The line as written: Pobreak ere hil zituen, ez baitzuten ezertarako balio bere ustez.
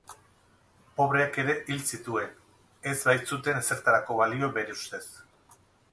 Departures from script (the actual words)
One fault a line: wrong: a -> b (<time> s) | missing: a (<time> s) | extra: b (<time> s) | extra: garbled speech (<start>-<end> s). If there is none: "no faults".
no faults